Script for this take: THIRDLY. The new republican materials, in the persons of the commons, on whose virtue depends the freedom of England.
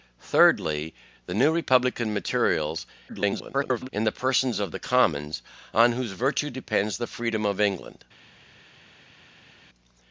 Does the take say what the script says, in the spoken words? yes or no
no